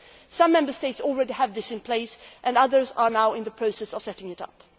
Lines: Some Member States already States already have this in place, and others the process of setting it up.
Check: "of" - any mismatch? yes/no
no